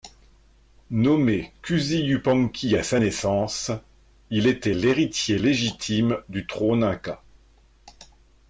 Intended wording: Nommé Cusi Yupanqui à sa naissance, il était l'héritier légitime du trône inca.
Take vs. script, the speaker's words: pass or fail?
pass